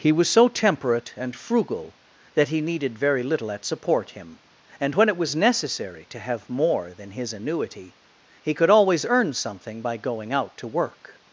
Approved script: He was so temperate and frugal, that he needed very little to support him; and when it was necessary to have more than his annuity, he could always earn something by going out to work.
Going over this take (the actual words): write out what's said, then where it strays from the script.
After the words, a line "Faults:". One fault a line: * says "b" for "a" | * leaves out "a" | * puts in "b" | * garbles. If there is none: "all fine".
He was so temperate and frugal, that he needed very little at support him; and when it was necessary to have more than his annuity, he could always earn something by going out to work.
Faults:
* says "at" for "to"